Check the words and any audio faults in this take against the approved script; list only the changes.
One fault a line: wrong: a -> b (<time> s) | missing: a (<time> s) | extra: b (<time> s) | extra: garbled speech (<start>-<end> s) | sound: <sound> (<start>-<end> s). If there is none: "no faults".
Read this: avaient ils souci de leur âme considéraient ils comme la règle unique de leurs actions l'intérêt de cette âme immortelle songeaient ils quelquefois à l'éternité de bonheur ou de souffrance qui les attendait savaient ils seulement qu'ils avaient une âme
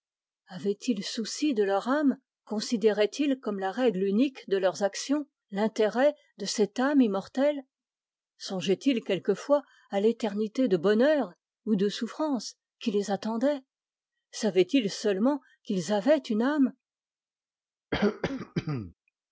sound: throat clearing (17.9-18.9 s)